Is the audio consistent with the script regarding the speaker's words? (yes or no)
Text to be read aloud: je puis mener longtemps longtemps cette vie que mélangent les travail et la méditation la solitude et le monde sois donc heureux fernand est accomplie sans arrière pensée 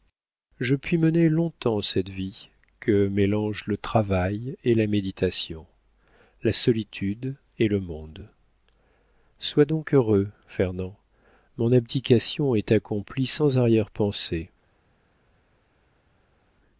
no